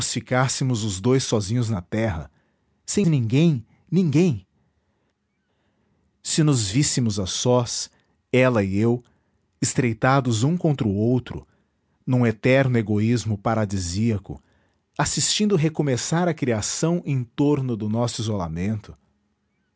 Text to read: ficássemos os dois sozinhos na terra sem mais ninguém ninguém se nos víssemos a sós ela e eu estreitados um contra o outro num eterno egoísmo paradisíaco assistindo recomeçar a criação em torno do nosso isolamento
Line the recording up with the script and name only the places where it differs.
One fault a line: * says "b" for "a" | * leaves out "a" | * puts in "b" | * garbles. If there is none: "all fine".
* leaves out "mais"